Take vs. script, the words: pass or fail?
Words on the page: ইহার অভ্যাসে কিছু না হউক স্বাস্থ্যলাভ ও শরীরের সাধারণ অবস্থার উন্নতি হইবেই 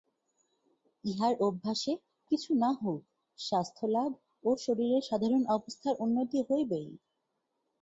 pass